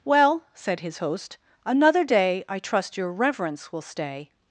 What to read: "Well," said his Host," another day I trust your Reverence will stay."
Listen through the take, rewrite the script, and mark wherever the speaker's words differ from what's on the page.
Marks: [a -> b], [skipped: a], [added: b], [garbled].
"Well," said his Host," another day I trust your Reverence will stay."